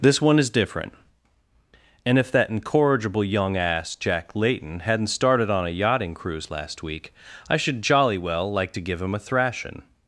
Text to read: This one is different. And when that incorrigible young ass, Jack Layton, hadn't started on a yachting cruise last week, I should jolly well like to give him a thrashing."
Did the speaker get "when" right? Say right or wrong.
wrong